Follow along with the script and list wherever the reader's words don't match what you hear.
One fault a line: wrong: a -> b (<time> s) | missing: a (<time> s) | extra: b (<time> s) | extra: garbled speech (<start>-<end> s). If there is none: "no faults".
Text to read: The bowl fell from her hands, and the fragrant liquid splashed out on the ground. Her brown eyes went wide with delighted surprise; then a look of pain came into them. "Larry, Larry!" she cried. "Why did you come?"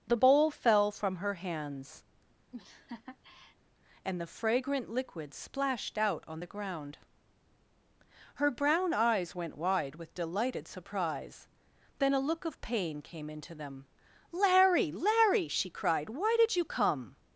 no faults